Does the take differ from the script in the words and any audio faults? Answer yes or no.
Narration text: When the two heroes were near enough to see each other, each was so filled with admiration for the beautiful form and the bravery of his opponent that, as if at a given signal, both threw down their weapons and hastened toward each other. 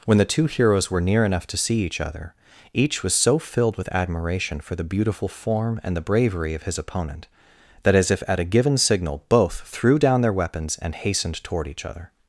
no